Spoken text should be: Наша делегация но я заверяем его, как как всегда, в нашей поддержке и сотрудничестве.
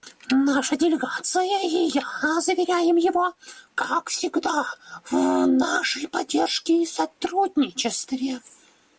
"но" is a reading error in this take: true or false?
true